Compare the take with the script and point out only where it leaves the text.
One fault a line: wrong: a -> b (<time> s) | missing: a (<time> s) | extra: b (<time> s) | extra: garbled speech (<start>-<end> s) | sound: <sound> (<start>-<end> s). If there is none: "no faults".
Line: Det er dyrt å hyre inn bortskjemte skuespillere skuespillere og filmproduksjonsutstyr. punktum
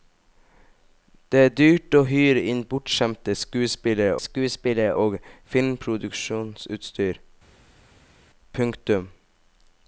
no faults